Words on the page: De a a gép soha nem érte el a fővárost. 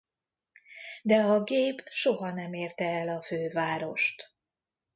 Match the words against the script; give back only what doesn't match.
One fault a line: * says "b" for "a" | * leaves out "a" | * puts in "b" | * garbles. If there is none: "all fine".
* leaves out "a"